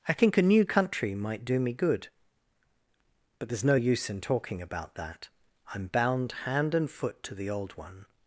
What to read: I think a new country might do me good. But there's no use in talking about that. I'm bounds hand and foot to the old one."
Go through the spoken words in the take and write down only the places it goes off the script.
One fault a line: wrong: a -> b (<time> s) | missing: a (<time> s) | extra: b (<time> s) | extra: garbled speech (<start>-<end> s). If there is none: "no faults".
wrong: bounds -> bound (5.9 s)